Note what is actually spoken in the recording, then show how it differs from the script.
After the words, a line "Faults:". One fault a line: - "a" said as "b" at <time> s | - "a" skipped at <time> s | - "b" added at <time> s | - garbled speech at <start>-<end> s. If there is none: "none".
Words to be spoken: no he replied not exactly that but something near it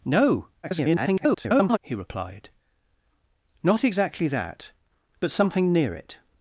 no [garbled] he replied not exactly that but something near it
Faults:
- garbled speech at 0.6-1.8 s